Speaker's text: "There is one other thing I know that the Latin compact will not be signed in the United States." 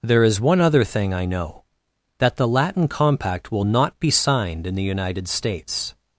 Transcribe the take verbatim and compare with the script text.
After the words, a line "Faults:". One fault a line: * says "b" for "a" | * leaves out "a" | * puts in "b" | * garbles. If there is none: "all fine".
"There is one other thing I know that the Latin compact will not be signed in the United States."
Faults:
all fine